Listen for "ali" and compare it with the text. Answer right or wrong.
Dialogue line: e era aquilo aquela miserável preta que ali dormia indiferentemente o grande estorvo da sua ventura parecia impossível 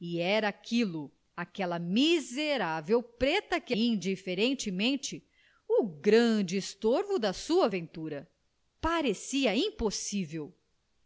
wrong